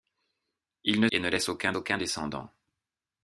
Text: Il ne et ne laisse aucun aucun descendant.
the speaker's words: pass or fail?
pass